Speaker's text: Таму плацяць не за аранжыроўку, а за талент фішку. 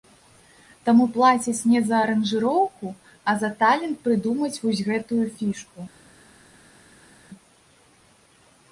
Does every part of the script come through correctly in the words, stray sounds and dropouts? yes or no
no